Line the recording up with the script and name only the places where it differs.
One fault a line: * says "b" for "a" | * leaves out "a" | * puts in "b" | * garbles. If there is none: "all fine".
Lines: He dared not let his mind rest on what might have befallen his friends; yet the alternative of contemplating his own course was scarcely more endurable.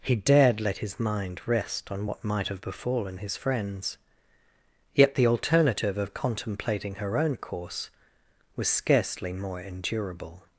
* leaves out "not"
* says "her" for "his"